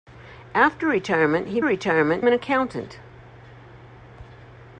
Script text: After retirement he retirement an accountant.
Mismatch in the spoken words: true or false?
false